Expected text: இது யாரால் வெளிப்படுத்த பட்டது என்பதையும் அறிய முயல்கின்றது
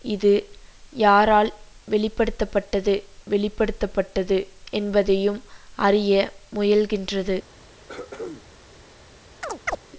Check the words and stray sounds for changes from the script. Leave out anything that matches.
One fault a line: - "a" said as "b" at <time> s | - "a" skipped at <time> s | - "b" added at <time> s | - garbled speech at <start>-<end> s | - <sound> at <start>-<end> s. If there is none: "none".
- "வெளிப்படுத்த பட்டது" added at 3.3 s
- throat clearing at 7.9-8.4 s
- chirp at 9.4-9.8 s